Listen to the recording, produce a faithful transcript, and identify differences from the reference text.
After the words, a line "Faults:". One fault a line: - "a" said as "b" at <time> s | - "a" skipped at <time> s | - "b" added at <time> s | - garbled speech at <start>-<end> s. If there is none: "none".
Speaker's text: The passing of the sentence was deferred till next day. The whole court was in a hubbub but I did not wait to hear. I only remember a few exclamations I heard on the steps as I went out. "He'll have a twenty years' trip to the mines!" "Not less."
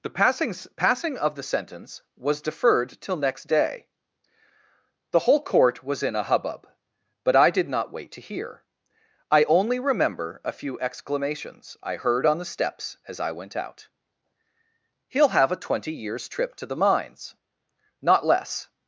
The passing passing of the sentence was deferred till next day. The whole court was in a hubbub but I did not wait to hear. I only remember a few exclamations I heard on the steps as I went out. "He'll have a twenty years' trip to the mines!" "Not less."
Faults:
- "passing" added at 0.8 s